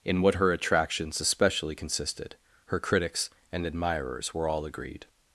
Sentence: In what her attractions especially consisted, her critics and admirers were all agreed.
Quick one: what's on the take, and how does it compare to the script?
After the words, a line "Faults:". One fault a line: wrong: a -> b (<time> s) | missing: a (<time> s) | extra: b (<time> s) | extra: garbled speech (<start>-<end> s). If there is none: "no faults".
In what her attractions especially consisted, her critics and admirers were all agreed.
Faults:
no faults